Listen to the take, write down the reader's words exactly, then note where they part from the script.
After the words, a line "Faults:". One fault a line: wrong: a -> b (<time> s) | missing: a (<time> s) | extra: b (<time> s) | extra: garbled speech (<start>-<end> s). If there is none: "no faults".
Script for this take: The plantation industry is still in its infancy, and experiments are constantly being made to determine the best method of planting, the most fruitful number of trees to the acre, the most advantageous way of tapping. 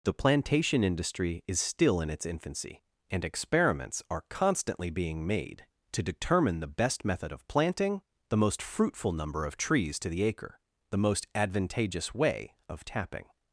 The plantation industry is still in its infancy, and experiments are constantly being made to determine the best method of planting, the most fruitful number of trees to the acre, the most advantageous way of tapping.
Faults:
no faults